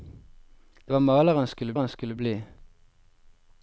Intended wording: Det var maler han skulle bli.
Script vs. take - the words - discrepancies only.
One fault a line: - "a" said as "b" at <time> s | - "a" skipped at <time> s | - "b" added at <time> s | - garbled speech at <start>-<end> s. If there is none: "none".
- "han skulle" added at 1.8 s